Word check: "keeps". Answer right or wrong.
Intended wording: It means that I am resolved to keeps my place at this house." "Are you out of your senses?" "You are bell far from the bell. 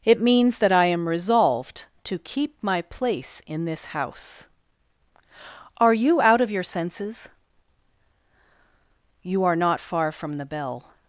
wrong